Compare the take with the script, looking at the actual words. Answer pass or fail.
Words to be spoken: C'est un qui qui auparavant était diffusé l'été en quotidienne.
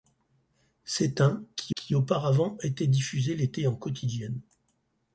pass